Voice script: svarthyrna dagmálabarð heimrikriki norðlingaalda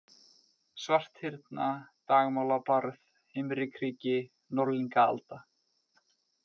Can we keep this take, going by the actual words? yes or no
yes